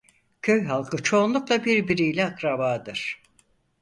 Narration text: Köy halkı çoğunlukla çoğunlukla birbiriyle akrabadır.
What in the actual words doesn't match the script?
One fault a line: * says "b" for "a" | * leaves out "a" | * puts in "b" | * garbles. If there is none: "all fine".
* leaves out "çoğunlukla"